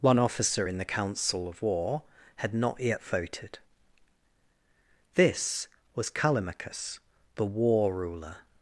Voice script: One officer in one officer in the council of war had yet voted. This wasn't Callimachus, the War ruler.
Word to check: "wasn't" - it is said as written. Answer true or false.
false